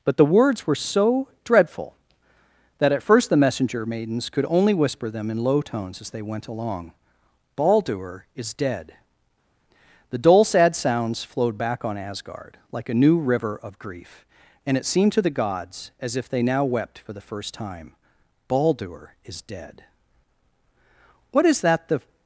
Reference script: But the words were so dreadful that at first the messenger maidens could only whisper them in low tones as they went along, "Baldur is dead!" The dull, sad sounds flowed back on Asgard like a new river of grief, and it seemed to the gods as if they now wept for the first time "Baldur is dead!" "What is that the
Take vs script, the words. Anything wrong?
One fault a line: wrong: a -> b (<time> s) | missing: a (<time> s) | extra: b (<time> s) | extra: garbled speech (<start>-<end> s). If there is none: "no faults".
no faults